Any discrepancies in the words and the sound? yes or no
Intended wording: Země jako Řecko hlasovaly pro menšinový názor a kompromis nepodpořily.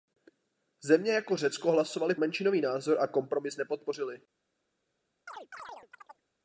yes